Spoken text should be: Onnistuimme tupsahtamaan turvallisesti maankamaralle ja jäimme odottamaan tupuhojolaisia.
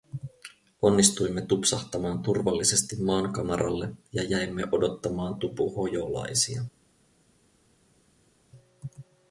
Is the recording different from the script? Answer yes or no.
no